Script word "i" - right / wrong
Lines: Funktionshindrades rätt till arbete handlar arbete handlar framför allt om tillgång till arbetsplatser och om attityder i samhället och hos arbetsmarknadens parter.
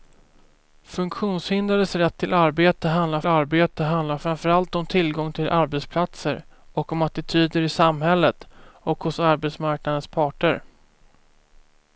right